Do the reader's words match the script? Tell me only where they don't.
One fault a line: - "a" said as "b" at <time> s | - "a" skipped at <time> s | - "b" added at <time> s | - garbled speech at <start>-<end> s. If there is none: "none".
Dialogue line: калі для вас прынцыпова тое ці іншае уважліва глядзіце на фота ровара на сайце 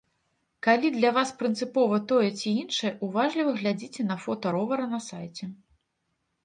none